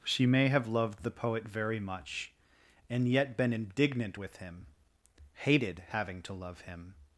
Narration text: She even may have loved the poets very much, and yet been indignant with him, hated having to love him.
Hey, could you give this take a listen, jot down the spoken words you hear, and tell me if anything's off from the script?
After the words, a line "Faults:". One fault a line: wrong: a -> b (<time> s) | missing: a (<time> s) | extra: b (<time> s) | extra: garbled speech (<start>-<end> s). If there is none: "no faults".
She may have loved the poet very much, and yet been indignant with him, hated having to love him.
Faults:
missing: even (0.2 s)
wrong: poets -> poet (1.1 s)